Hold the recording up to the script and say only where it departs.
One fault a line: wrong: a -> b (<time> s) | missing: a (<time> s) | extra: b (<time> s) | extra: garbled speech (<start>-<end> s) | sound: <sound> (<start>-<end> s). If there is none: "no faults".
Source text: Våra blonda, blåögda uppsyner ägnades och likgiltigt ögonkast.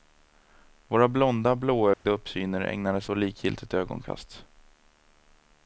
sound: dropout (1.9-2.1 s)